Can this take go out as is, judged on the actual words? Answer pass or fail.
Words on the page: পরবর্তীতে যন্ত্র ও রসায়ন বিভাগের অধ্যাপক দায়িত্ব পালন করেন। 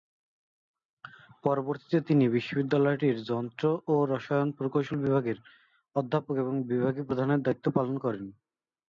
fail